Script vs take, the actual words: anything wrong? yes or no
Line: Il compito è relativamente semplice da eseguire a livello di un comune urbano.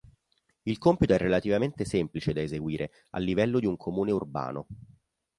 no